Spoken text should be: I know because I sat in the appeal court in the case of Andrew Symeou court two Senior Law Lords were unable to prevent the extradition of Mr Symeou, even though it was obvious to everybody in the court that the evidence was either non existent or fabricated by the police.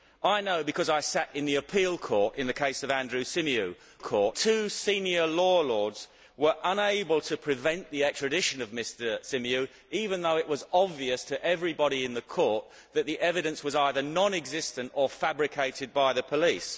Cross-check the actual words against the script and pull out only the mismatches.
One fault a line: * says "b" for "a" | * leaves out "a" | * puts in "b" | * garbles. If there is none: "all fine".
all fine